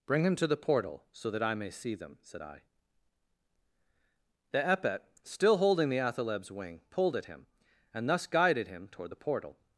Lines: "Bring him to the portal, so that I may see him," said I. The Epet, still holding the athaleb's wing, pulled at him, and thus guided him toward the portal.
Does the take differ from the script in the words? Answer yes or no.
yes